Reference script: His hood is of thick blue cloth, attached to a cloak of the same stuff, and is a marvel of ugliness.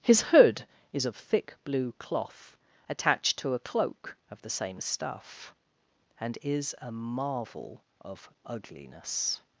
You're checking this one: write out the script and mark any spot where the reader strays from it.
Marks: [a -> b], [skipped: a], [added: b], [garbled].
His hood is of thick blue cloth, attached to a cloak of the same stuff, and is a marvel of ugliness.